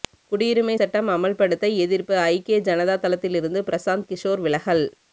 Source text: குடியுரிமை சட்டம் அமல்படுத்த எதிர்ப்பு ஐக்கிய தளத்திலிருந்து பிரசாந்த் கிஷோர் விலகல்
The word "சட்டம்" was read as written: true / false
true